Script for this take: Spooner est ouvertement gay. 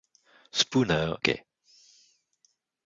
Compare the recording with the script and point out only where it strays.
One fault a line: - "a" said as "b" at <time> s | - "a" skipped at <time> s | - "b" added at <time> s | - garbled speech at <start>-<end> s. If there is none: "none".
- "est ouvertement" skipped at 1.1 s